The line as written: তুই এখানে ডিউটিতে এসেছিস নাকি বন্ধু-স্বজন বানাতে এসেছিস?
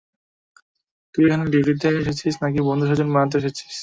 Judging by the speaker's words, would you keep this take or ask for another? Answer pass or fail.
pass